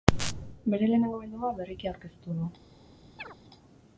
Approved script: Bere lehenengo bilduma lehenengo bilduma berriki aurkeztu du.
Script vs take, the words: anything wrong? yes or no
yes